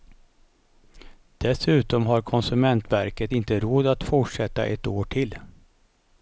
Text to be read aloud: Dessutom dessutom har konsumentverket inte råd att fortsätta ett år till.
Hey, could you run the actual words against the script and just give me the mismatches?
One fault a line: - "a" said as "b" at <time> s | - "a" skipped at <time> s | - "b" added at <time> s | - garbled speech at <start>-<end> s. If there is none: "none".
- "dessutom" skipped at 2.0 s